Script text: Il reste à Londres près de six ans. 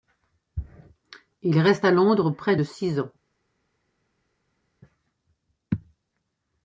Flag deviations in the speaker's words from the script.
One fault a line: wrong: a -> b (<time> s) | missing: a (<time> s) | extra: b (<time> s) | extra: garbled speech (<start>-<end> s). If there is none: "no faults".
no faults